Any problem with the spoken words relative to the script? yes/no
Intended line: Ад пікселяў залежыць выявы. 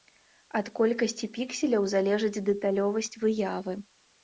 yes